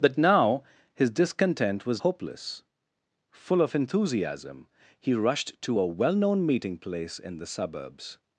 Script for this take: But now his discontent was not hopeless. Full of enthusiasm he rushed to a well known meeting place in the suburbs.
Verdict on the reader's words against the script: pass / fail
fail